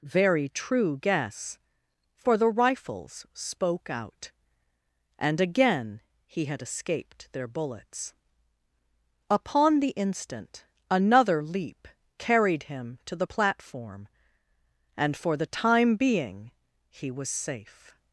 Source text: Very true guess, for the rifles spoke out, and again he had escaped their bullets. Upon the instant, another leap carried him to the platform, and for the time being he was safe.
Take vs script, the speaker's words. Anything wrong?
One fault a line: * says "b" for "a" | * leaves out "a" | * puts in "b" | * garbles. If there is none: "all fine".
all fine